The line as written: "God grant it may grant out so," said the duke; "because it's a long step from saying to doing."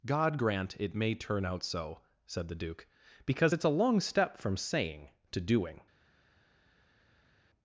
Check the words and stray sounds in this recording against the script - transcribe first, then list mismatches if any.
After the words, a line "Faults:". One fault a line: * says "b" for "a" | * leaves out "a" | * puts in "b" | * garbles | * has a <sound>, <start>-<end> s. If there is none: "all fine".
"God grant it may turn out so," said the duke; "because it's a long step from saying to doing."
Faults:
* says "turn" for "grant"